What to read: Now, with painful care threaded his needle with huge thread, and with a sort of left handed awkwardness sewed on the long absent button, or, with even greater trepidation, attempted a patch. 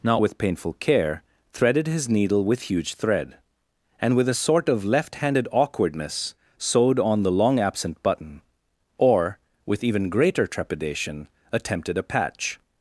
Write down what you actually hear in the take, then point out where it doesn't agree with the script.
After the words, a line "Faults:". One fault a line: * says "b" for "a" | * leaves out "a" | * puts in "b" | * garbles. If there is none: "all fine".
Now, with painful care threaded his needle with huge thread, and with a sort of left handed awkwardness sewed on the long absent button, or, with even greater trepidation, attempted a patch.
Faults:
all fine